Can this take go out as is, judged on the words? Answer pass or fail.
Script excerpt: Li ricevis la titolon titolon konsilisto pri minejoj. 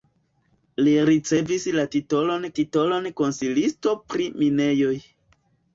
pass